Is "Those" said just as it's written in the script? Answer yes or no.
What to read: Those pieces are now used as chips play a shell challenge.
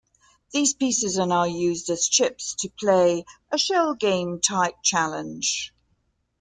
no